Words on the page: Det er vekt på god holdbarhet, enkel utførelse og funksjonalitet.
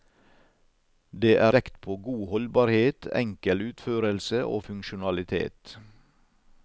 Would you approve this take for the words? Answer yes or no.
yes